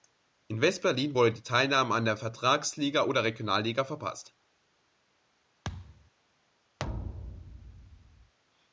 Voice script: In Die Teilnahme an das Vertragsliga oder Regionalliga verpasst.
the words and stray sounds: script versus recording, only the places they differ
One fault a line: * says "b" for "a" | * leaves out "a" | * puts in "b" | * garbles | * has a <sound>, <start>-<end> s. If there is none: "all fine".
* puts in "West Berlin wurde"
* says "der" for "das"
* has a thud, 5.6-6.1 s
* has a thud, 6.8-8.3 s